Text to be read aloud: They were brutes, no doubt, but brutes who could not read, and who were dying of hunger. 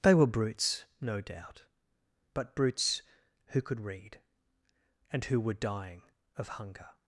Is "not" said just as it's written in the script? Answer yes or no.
no